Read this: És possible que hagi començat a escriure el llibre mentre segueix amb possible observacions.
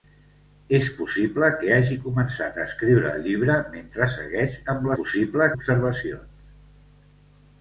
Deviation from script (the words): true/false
false